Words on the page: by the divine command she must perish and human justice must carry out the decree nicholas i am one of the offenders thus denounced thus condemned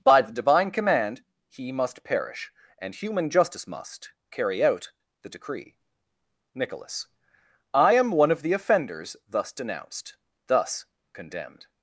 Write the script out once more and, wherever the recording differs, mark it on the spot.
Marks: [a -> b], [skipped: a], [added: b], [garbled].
by the divine command [she -> he] must perish and human justice must carry out the decree nicholas i am one of the offenders thus denounced thus condemned